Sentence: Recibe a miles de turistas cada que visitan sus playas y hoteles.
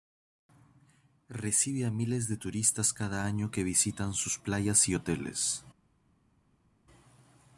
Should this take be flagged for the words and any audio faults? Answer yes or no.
yes